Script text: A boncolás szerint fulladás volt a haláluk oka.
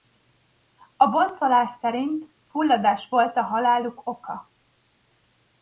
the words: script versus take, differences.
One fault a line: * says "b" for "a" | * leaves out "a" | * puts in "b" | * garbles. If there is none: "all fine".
all fine